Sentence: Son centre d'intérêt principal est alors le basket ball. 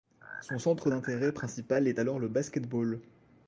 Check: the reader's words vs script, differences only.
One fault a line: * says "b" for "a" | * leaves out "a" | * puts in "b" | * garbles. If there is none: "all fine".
all fine